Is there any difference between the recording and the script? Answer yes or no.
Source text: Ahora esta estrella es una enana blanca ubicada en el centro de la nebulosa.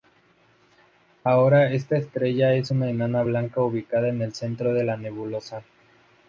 no